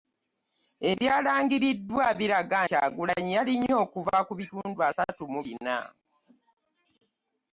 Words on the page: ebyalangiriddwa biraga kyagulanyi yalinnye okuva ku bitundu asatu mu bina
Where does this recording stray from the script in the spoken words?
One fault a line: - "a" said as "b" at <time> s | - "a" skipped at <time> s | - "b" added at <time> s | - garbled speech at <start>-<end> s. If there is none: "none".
none